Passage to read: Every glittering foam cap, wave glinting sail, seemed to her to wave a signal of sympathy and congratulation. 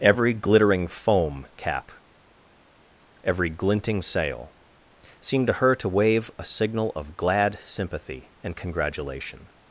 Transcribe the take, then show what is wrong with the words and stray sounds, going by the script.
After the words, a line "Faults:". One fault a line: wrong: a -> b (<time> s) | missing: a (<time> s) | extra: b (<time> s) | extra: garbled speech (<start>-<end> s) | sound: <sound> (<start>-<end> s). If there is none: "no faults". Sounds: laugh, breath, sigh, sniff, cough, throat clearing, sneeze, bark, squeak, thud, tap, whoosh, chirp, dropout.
Every glittering foam cap, every glinting sail, seemed to her to wave a signal of glad sympathy and congratulation.
Faults:
wrong: wave -> every (3.2 s)
extra: glad (7.2 s)